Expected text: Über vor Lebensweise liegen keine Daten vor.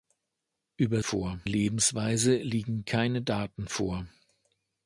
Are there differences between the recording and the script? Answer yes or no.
no